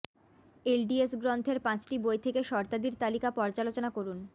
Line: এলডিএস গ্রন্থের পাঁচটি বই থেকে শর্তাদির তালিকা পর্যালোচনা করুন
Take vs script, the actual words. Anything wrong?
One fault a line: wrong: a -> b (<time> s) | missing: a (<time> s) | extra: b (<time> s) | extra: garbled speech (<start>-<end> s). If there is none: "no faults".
no faults